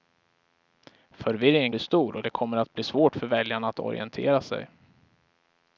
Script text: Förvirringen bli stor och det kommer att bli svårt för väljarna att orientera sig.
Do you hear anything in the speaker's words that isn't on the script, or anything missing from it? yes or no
no